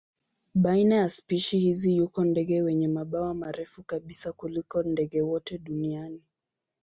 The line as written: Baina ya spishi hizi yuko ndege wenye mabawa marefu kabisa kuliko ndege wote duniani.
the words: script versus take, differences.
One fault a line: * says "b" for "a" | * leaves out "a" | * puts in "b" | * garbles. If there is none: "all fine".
all fine